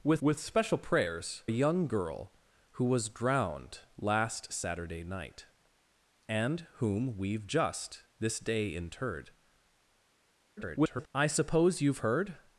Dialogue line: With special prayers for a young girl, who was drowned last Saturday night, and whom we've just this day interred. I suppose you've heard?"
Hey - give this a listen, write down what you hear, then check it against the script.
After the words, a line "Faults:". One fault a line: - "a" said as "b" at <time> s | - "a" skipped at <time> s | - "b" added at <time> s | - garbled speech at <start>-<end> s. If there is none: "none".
With with special prayers a young girl, who was drowned last Saturday night, and whom we've just this day interred. [garbled] I suppose you've heard?"
Faults:
- "with" added at 0.2 s
- "for" skipped at 1.4 s
- garbled speech at 10.6-11.1 s